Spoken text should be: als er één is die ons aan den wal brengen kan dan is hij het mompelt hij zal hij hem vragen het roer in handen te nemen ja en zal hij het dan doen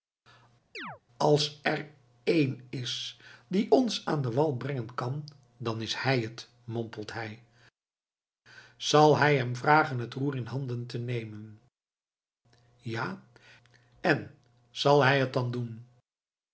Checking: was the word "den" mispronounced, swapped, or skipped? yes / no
no